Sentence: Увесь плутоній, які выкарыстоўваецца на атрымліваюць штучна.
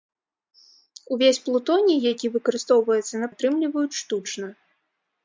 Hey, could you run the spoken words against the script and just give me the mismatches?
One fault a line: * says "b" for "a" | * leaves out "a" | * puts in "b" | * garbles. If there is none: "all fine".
all fine